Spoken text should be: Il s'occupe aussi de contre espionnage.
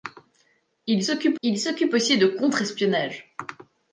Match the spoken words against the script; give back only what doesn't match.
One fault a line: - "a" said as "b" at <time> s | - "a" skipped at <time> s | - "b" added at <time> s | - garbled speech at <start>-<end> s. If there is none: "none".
- "il s'occupe" added at 1.4 s